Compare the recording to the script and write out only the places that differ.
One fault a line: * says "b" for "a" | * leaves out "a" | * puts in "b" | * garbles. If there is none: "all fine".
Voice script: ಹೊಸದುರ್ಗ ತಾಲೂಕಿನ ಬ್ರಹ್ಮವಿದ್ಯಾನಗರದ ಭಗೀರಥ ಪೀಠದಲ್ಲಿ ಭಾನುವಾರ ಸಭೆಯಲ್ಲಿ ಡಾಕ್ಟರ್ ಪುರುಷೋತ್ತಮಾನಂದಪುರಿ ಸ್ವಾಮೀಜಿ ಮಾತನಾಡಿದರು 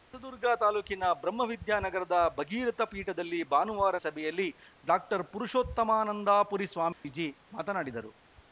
all fine